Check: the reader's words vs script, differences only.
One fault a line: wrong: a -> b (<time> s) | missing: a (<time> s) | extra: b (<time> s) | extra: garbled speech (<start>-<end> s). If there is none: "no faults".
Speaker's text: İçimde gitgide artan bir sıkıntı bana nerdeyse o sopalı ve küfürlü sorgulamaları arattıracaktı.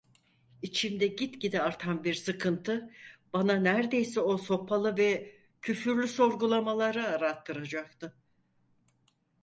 no faults